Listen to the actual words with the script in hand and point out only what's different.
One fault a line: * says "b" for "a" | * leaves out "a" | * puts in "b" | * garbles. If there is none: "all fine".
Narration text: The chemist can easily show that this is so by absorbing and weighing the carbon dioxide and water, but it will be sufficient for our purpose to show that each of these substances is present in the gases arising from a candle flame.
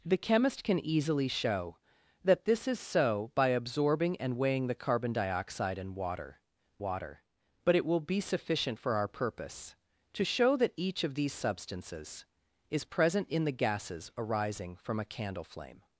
* puts in "water"